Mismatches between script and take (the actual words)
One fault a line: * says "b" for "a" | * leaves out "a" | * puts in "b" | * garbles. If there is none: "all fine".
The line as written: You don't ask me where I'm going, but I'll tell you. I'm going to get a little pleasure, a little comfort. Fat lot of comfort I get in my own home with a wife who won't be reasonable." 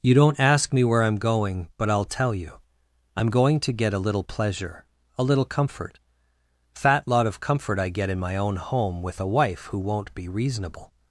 all fine